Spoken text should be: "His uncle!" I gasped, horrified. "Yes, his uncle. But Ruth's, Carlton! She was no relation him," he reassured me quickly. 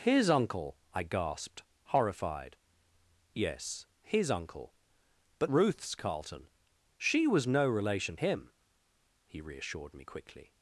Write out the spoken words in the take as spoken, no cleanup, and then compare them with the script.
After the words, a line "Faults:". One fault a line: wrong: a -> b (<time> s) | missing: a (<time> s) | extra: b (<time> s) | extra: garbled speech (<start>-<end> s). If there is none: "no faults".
"His uncle!" I gasped, horrified. "Yes, his uncle. But Ruth's, Carlton! She was no relation him," he reassured me quickly.
Faults:
no faults